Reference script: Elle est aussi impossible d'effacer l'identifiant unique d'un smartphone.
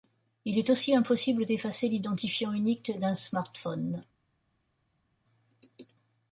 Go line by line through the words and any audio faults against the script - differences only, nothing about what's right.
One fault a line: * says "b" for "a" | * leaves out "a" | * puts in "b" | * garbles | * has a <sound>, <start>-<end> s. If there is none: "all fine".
* says "Il" for "Elle"